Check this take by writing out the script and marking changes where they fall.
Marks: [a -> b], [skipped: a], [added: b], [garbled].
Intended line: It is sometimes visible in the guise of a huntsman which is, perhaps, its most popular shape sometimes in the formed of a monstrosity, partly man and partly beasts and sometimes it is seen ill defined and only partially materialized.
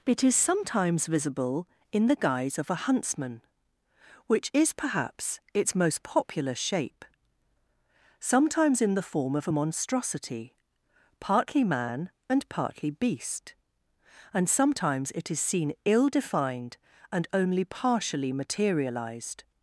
It is sometimes visible in the guise of a huntsman which is, perhaps, its most popular shape sometimes in the [formed -> form] of a monstrosity, partly man and partly [beasts -> beast] and sometimes it is seen ill defined and only partially materialized.